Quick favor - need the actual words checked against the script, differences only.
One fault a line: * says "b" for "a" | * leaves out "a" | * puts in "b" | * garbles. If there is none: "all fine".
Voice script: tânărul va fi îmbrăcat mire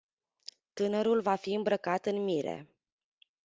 * puts in "în"